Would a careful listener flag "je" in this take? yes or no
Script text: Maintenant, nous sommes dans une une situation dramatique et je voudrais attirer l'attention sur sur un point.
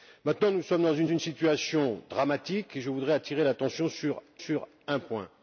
no